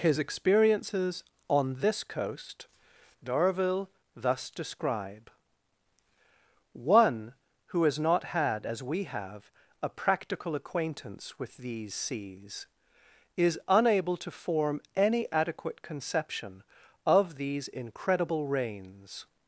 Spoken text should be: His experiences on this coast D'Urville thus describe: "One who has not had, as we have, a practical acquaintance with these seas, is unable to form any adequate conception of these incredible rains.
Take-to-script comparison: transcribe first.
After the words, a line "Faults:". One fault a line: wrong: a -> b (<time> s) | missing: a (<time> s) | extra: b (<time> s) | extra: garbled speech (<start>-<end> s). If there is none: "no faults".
His experiences on this coast D'Urville thus describe: "One who has not had, as we have, a practical acquaintance with these seas, is unable to form any adequate conception of these incredible rains.
Faults:
no faults